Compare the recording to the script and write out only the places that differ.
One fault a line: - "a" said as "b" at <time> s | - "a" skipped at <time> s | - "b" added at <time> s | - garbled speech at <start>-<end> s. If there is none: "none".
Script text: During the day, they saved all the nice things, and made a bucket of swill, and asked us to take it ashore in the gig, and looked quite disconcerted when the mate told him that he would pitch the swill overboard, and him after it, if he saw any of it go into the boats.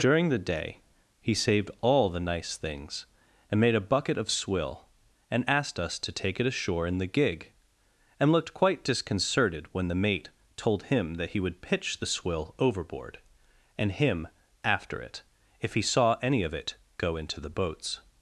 - "they" said as "he" at 1.2 s